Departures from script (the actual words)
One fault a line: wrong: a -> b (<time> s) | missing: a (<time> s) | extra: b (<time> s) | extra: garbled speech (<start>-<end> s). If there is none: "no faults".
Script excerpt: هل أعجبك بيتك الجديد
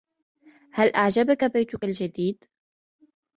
no faults